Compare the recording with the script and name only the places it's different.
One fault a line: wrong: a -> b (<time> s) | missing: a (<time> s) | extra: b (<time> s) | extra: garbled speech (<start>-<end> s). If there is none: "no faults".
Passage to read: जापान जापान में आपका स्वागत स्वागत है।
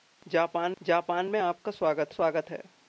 no faults